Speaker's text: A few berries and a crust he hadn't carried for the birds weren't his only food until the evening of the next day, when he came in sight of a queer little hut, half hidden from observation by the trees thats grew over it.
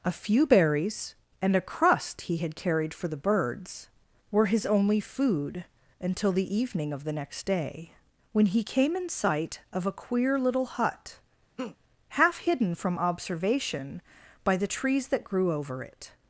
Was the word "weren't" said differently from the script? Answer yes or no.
yes